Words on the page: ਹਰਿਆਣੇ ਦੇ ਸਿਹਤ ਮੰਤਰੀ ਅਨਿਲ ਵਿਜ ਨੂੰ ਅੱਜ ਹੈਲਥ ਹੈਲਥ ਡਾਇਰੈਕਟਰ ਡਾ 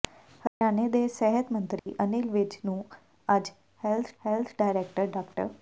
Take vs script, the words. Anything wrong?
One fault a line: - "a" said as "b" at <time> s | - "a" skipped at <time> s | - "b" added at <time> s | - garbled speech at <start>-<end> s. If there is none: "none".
none